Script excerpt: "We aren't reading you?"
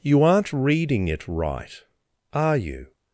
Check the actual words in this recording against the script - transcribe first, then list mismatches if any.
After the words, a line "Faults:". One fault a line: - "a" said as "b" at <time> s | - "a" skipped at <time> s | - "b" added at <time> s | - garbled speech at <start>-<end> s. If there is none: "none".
"You aren't reading it right, are you?"
Faults:
- "We" said as "You" at 0.0 s
- "it right are" added at 1.1 s